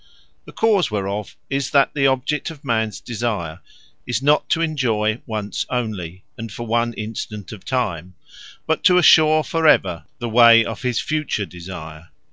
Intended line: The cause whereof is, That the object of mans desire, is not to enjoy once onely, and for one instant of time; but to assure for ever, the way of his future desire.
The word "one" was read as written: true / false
true